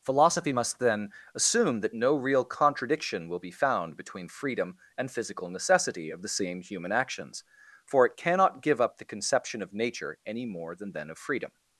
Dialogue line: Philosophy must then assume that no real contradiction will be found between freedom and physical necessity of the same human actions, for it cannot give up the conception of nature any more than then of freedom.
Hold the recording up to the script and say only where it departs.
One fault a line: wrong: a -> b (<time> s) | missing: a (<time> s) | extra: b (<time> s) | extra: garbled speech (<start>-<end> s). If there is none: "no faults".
no faults